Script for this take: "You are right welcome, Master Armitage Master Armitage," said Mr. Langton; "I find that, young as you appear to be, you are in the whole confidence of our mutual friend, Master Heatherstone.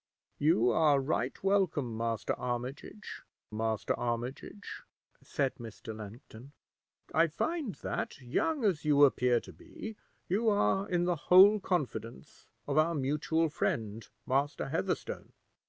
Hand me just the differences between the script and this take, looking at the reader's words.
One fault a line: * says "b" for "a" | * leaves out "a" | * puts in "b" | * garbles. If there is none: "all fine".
all fine